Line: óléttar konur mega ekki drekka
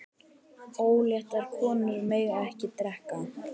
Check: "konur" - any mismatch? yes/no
no